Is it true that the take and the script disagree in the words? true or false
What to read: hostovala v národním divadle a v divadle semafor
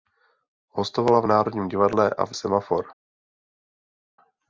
true